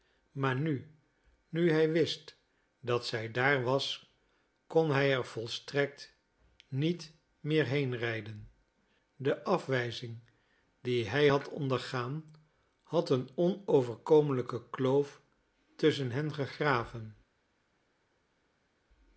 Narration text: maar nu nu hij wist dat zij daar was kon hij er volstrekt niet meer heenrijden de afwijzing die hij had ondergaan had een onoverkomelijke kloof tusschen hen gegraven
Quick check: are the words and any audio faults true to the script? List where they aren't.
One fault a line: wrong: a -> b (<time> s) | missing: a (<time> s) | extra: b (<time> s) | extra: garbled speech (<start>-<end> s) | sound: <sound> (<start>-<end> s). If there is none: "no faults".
no faults